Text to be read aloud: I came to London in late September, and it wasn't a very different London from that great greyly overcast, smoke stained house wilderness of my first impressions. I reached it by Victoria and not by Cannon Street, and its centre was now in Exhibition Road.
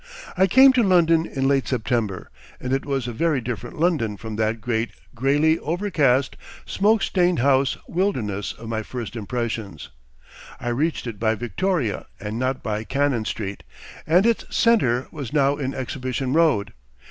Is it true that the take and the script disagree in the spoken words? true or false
true